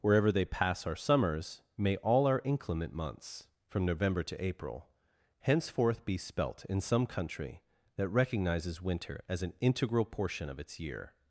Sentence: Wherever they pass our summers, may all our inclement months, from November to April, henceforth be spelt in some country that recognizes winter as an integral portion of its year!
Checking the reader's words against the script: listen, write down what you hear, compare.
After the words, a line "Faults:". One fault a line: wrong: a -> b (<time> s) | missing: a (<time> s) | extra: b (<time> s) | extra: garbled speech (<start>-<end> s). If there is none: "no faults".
Wherever they pass our summers, may all our inclement months, from November to April, henceforth be spelt in some country that recognizes winter as an integral portion of its year!
Faults:
no faults